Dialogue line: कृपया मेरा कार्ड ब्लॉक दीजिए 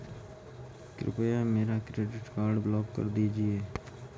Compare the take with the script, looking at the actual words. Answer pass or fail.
fail